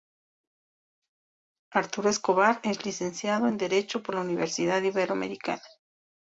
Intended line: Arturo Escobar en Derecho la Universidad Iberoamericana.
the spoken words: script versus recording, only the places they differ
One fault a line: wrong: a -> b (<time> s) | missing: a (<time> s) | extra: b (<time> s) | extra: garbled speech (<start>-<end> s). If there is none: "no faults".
extra: es licenciado (2.6 s)
extra: por (4.0 s)